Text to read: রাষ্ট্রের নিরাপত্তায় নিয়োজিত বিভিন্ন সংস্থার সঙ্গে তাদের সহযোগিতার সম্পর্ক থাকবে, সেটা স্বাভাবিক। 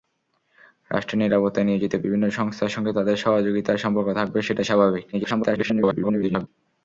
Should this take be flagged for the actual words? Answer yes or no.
yes